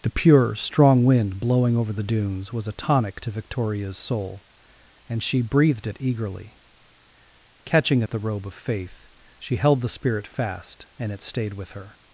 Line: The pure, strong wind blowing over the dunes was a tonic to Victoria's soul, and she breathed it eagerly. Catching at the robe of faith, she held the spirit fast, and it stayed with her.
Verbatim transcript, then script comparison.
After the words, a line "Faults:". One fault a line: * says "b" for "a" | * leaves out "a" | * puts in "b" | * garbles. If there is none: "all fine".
The pure, strong wind blowing over the dunes was a tonic to Victoria's soul, and she breathed it eagerly. Catching at the robe of faith, she held the spirit fast, and it stayed with her.
Faults:
all fine